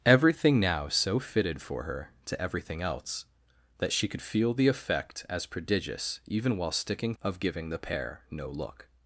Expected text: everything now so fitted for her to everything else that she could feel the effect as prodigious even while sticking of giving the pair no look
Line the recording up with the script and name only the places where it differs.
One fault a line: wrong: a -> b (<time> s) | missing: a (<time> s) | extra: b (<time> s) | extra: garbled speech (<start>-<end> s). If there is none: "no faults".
no faults